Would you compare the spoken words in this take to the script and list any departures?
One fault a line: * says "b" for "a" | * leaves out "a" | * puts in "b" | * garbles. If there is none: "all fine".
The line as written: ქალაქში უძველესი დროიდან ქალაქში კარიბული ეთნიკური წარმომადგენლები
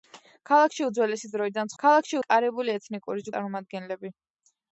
all fine